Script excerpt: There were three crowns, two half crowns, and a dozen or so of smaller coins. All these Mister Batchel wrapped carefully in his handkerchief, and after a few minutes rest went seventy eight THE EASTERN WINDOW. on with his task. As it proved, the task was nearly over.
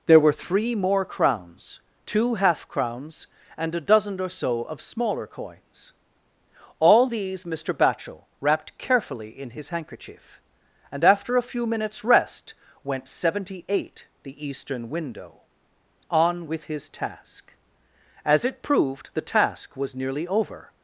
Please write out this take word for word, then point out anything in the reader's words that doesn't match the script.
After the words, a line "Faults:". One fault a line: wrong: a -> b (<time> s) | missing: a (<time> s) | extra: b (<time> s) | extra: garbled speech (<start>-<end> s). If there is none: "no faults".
There were three more crowns, two half crowns, and a dozen or so of smaller coins. All these Mister Batchel wrapped carefully in his handkerchief, and after a few minutes rest went seventy eight THE EASTERN WINDOW. on with his task. As it proved, the task was nearly over.
Faults:
extra: more (0.8 s)